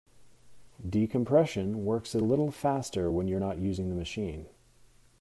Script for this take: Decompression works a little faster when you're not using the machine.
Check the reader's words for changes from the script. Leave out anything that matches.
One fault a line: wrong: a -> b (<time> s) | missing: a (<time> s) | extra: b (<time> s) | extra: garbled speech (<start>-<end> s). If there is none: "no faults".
no faults